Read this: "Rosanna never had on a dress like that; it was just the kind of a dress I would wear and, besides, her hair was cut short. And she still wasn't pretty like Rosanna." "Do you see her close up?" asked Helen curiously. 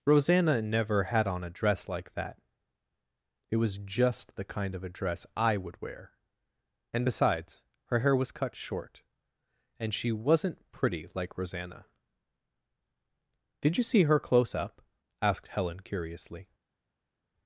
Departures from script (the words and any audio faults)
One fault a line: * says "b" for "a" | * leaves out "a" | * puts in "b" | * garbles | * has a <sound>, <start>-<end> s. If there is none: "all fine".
* leaves out "still"
* says "Did" for "Do"